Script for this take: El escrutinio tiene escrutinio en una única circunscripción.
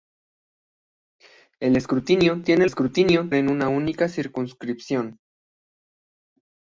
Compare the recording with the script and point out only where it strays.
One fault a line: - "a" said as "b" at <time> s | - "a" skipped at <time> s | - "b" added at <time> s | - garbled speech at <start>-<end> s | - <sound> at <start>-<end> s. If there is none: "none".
none